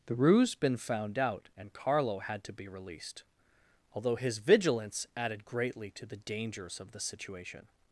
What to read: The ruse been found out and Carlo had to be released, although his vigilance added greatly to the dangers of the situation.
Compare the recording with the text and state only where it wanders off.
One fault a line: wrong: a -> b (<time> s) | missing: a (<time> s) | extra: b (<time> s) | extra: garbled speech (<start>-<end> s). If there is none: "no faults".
no faults